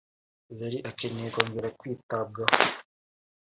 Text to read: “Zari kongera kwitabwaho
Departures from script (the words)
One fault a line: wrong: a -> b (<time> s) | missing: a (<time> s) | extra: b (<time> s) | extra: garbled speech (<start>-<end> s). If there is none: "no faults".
extra: akeneye (0.9 s)